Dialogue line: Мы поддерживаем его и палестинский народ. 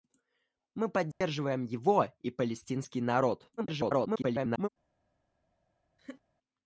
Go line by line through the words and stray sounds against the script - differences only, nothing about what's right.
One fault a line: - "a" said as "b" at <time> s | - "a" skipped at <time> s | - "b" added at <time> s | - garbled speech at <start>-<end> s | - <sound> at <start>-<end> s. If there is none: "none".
- dropout at 1.1-1.2 s
- garbled speech at 3.6-4.7 s
- laugh at 6.0-6.2 s